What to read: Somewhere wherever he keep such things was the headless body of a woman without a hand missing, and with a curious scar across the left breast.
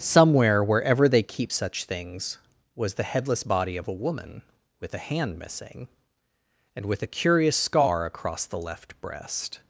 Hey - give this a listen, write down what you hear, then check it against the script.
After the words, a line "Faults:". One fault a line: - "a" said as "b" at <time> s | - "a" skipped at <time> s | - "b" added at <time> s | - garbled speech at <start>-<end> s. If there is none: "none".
Somewhere wherever they keep such things was the headless body of a woman with a hand missing, and with a curious scar across the left breast.
Faults:
- "he" said as "they" at 1.1 s
- "without" said as "with" at 4.8 s